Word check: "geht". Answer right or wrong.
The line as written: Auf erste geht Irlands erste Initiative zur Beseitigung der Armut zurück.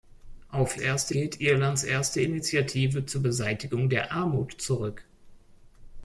right